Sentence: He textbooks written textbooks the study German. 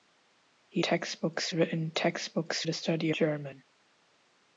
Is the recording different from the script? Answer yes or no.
no